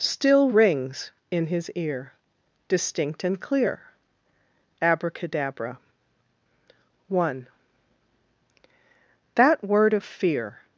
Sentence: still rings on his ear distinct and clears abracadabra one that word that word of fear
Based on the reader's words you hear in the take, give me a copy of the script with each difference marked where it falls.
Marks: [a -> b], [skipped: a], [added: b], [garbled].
still rings [on -> in] his ear distinct and [clears -> clear] abracadabra one that word [skipped: that word] of fear